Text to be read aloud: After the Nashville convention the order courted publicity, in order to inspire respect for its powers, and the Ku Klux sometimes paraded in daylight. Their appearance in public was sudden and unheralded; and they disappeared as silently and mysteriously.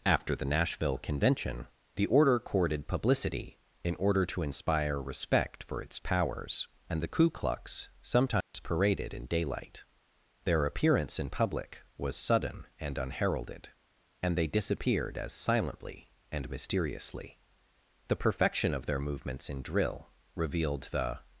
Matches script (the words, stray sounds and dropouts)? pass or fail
fail